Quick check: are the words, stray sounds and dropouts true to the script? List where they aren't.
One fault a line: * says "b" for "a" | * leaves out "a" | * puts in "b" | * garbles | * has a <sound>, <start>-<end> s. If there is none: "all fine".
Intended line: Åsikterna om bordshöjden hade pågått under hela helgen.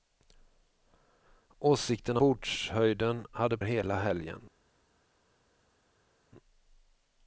* leaves out "om"
* leaves out "pågått under"